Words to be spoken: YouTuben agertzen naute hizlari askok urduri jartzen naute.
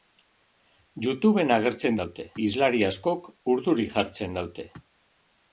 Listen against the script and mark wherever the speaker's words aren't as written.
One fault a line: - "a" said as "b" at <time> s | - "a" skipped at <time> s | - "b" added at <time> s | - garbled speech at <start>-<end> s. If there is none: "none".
none